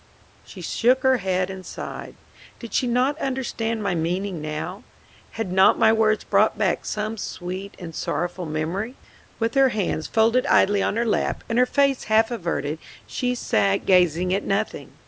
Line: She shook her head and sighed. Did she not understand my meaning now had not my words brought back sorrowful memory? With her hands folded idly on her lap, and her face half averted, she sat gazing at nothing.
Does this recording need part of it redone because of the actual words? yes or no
yes